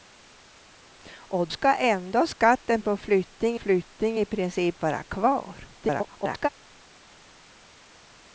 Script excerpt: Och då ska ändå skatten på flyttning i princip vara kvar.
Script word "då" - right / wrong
wrong